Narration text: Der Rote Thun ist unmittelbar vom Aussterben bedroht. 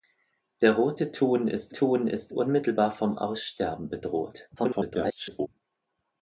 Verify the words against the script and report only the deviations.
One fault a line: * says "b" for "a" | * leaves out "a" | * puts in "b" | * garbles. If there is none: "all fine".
* puts in "Thun ist"
* garbles